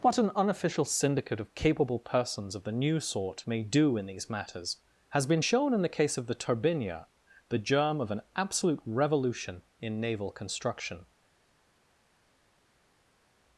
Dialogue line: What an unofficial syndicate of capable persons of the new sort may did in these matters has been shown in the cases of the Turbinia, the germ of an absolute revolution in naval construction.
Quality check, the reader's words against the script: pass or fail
fail